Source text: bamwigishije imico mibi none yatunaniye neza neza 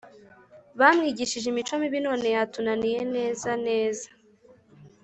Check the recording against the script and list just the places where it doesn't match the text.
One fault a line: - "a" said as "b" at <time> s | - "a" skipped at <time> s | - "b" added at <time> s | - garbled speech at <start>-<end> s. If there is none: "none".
none